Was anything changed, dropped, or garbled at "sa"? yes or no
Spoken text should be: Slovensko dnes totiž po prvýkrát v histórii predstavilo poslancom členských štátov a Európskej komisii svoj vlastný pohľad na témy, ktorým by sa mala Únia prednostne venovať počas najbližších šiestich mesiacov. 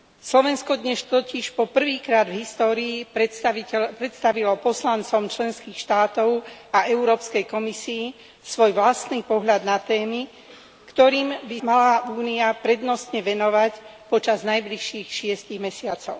yes